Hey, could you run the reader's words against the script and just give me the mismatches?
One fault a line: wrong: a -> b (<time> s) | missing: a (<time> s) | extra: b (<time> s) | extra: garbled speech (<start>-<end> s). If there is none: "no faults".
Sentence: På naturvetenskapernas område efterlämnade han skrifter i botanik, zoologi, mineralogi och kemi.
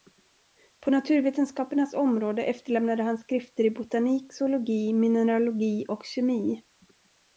no faults